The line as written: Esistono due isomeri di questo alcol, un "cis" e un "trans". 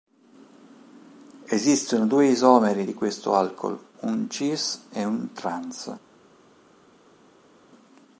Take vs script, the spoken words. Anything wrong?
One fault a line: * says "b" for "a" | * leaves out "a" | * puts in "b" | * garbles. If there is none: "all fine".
all fine